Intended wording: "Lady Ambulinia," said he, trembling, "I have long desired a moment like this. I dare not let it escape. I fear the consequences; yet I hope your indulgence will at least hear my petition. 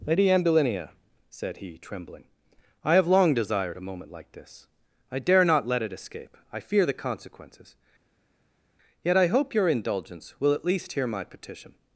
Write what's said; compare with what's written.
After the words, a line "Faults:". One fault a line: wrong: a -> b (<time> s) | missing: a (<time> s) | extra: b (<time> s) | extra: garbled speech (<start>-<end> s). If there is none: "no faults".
"Lady Ambulinia," said he, trembling, "I have long desired a moment like this. I dare not let it escape. I fear the consequences; yet I hope your indulgence will at least hear my petition.
Faults:
no faults